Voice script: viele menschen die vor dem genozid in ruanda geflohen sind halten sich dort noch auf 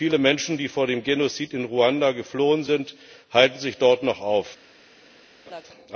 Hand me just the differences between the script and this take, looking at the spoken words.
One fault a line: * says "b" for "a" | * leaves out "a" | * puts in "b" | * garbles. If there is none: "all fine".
all fine